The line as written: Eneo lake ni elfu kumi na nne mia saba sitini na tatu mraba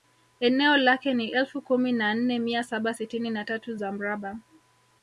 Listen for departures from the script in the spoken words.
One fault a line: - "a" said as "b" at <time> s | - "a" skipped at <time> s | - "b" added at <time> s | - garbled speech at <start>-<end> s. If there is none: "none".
- "za" added at 3.7 s